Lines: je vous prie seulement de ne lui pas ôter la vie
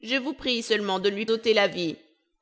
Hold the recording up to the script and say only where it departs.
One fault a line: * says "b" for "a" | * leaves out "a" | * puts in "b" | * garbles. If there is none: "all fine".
* leaves out "pas"